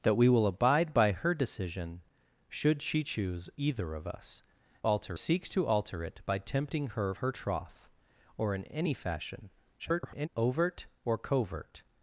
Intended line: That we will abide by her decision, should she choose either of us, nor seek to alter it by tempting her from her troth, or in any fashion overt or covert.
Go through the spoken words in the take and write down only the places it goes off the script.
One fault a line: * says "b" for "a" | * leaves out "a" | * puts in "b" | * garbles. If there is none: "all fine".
* says "alter" for "nor"
* leaves out "from"
* garbles